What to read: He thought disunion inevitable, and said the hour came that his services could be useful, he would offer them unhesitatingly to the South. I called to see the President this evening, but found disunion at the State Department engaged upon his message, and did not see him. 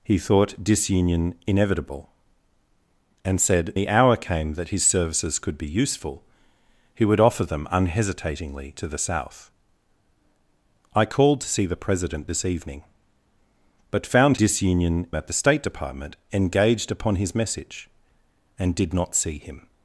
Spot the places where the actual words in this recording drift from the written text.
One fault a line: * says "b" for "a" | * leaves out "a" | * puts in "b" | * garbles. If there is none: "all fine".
all fine